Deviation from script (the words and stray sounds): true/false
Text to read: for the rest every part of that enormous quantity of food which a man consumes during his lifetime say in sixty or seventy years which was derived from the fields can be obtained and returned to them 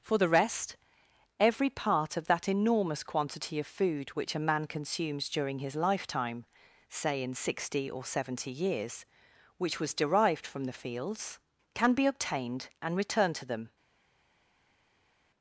false